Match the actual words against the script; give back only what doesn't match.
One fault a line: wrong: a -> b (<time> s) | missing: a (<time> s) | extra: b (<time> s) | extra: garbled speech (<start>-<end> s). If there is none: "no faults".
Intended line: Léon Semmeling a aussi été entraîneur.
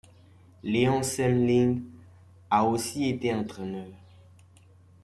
no faults